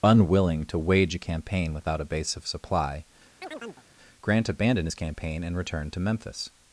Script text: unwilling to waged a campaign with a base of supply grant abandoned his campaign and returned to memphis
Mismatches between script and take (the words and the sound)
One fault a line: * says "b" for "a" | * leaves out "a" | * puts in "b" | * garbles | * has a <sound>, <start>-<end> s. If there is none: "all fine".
* says "wage" for "waged"
* says "without" for "with"
* has a chirp, 3.4-3.9 s